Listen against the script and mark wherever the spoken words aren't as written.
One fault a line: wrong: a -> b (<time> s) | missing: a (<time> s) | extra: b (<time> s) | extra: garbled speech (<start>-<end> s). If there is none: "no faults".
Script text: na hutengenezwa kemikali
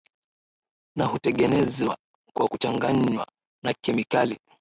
extra: kwa kuchanganywa na (2.3 s)